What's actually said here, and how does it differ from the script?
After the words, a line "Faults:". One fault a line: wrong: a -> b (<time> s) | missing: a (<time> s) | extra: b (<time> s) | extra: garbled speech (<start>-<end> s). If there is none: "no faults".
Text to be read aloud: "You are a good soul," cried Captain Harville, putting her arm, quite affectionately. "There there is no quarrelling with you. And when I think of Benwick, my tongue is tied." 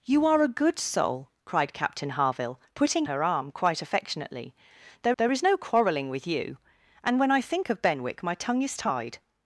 "You are a good soul," cried Captain Harville, putting her arm, quite affectionately. "There there is no quarrelling with you. And when I think of Benwick, my tongue is tied."
Faults:
no faults